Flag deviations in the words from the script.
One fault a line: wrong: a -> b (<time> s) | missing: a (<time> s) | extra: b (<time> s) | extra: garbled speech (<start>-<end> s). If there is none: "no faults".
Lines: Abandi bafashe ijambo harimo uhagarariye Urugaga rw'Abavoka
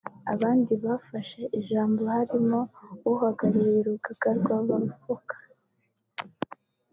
no faults